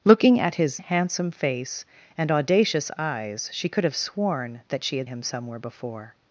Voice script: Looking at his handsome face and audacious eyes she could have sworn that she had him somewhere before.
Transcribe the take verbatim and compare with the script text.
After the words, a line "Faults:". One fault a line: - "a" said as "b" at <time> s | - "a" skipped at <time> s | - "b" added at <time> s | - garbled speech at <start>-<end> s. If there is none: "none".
Looking at his handsome face and audacious eyes she could have sworn that she had him somewhere before.
Faults:
none